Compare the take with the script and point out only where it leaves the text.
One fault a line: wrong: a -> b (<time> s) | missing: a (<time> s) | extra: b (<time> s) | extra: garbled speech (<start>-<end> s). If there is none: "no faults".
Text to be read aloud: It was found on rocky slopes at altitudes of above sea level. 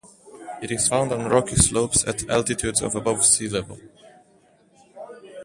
wrong: was -> is (0.7 s)